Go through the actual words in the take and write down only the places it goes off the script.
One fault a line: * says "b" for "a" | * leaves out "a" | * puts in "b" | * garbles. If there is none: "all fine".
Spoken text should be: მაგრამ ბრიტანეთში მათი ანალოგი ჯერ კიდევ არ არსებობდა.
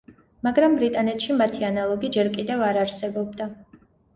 all fine